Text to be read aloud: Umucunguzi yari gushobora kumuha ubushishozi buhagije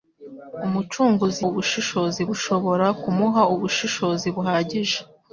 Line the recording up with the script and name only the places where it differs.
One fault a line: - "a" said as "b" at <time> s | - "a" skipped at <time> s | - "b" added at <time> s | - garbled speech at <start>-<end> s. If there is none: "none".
- "yari" said as "ubushishozi" at 1.5 s